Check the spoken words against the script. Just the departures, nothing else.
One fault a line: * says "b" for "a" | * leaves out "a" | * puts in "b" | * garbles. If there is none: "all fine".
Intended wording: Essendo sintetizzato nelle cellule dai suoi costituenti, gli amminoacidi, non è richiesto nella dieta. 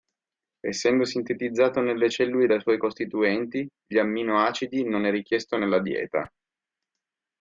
all fine